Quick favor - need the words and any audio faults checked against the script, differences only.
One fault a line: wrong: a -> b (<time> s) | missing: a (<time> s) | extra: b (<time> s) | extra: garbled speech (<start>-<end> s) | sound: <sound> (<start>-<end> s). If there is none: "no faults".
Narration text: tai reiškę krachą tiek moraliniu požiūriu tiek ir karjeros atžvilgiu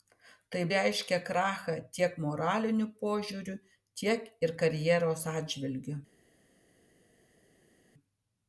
no faults